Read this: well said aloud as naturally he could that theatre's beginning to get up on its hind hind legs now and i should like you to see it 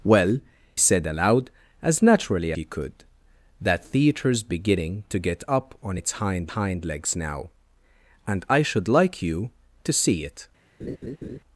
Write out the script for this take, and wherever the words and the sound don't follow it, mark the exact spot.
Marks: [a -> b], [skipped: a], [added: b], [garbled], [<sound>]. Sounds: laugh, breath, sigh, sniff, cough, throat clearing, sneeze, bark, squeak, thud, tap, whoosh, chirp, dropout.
well said aloud as naturally he could that theatre's beginning to get up on its hind hind legs now and i should like you to see it [laugh]